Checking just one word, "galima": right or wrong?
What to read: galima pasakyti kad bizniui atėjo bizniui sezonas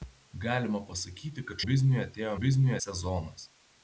right